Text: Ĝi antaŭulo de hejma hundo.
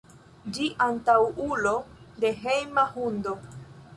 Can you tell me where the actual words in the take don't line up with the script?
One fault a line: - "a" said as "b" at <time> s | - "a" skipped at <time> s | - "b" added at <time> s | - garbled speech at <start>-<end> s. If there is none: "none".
none